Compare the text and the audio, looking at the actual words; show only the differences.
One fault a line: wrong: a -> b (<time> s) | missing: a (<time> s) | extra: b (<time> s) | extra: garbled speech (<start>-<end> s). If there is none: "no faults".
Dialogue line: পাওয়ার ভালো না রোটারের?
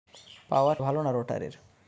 no faults